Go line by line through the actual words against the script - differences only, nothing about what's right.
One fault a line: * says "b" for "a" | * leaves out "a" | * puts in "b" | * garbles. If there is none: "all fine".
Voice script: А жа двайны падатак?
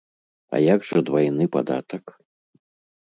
* puts in "як"